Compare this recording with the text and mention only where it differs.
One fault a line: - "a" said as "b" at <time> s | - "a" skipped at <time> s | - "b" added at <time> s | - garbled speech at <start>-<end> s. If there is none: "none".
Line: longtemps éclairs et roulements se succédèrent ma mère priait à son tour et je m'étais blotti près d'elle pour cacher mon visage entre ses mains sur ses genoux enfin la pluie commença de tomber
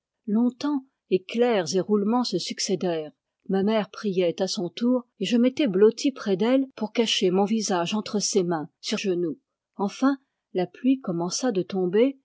- "ses" skipped at 9.0 s